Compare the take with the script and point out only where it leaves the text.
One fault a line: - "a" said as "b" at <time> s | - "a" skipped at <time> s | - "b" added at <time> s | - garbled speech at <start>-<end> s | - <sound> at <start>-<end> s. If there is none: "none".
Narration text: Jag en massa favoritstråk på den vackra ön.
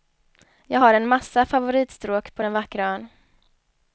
- "har" added at 0.8 s